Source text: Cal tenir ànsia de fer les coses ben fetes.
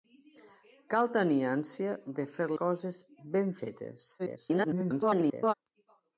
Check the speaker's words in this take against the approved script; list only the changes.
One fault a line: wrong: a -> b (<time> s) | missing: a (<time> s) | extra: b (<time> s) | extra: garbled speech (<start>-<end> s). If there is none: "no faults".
missing: les (2.5 s)
extra: garbled speech (4.2-5.5 s)